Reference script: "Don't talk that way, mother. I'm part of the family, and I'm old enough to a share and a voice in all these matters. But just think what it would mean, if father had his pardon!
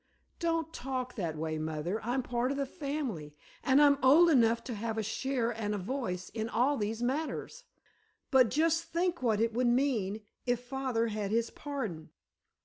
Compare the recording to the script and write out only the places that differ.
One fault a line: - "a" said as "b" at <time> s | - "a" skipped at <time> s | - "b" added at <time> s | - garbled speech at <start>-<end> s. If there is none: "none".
- "have" added at 4.8 s